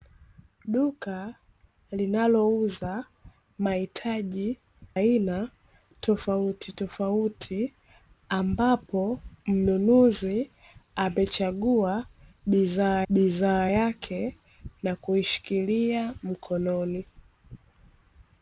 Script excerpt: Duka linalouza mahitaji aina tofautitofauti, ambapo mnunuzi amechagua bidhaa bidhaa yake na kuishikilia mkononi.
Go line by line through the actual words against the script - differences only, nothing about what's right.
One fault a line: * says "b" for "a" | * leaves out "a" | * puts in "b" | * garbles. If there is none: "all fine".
all fine